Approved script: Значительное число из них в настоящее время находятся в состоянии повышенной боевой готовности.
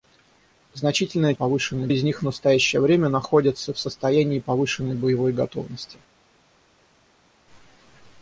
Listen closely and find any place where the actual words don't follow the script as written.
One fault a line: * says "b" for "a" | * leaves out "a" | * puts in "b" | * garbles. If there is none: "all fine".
* says "повышенной" for "число"